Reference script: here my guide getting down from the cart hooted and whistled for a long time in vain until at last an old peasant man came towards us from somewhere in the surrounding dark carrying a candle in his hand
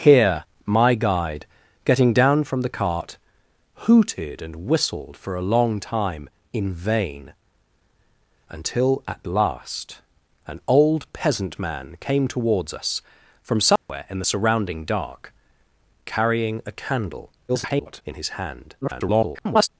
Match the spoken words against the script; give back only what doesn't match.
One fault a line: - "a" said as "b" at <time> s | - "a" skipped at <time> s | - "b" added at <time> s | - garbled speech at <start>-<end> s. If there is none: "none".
- garbled speech at 17.5-18.0 s
- garbled speech at 18.8-19.7 s